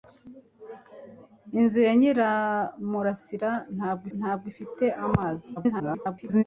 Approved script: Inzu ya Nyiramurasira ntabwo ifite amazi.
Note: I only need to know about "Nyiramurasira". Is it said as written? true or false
true